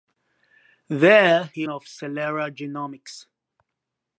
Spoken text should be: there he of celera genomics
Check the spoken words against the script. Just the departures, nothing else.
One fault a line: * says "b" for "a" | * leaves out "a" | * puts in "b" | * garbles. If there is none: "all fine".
all fine